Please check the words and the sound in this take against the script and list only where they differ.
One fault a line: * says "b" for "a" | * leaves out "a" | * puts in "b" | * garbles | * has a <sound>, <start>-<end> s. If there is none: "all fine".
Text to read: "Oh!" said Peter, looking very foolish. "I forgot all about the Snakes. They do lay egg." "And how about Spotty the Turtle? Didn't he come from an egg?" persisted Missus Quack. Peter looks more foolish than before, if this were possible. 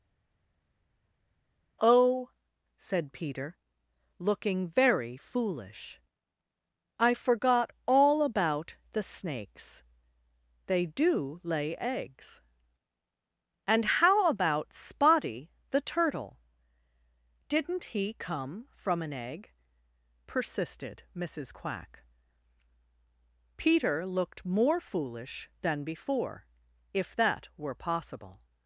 * says "eggs" for "egg"
* says "looked" for "looks"
* says "that" for "this"